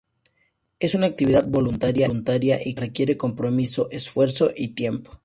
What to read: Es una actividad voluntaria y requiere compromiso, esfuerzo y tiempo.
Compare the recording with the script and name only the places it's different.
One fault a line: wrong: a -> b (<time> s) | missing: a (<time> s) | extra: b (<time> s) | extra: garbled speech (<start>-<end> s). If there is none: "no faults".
no faults